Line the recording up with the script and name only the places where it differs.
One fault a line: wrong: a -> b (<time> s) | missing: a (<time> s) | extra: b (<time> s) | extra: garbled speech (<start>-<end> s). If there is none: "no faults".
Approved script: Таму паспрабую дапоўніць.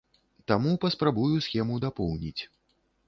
extra: схему (1.5 s)